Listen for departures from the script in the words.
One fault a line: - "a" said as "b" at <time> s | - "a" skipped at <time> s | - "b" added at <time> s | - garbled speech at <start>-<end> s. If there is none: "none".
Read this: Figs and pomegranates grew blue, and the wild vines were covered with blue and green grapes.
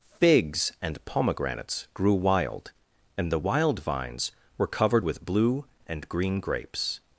- "blue" said as "wild" at 2.1 s